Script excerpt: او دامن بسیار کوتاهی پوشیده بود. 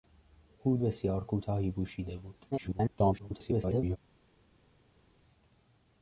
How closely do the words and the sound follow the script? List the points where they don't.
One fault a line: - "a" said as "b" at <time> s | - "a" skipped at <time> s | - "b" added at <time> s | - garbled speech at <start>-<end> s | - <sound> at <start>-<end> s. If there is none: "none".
- "دامن" skipped at 0.8 s
- garbled speech at 2.5-4.0 s